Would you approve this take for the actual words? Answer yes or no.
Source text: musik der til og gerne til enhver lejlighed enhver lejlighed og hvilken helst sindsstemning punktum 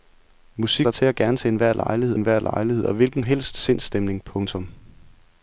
yes